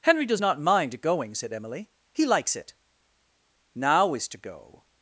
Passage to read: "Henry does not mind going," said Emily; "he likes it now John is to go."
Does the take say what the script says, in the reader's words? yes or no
no